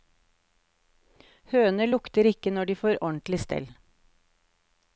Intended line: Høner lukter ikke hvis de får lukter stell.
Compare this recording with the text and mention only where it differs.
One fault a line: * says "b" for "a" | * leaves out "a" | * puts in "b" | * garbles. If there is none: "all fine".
* says "når" for "hvis"
* says "ordentlig" for "lukter"